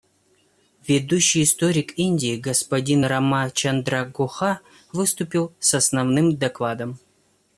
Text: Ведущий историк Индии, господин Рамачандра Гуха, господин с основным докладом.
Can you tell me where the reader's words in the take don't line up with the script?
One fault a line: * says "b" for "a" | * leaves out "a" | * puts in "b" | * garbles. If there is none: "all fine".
* says "выступил" for "господин"